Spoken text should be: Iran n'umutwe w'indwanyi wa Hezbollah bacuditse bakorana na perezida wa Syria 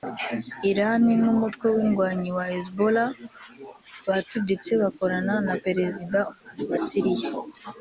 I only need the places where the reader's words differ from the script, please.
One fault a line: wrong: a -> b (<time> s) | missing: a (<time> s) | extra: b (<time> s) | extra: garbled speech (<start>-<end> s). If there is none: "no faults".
missing: wa (6.2 s)